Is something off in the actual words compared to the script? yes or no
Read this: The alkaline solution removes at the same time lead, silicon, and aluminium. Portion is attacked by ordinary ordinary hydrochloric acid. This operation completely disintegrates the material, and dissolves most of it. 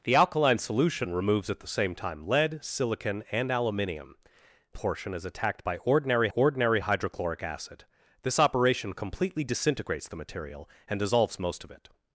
no